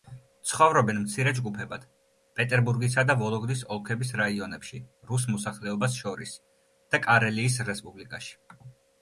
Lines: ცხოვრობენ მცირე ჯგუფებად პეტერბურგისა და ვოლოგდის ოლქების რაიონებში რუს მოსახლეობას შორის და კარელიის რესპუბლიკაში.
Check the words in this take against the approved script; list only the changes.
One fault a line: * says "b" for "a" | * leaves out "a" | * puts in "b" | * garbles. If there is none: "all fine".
all fine